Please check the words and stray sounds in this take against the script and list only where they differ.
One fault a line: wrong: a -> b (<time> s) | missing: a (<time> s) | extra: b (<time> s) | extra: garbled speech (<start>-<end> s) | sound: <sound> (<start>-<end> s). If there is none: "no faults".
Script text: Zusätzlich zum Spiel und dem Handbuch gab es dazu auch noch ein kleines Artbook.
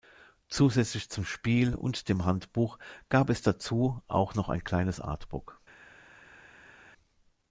no faults